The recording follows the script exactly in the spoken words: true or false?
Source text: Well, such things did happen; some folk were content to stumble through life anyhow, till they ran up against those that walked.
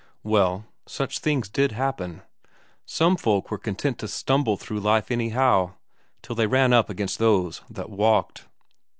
true